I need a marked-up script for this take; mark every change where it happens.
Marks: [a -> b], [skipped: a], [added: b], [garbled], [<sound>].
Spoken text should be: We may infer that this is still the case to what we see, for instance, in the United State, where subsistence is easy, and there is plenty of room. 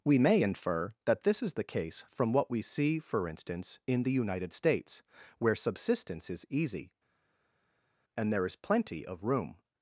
We may infer that this is [skipped: still] the case [to -> from] what we see, for instance, in the United [State, -> States] where subsistence is easy, and there is plenty of room.